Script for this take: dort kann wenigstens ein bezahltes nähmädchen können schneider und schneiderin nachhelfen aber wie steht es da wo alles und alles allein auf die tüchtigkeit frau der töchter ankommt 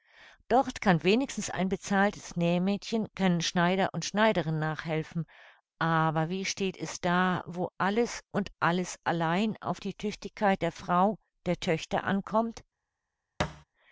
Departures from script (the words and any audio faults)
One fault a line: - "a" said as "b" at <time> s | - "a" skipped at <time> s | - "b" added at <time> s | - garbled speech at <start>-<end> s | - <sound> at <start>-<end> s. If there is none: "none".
- "der" added at 10.6 s
- thud at 13.4-13.6 s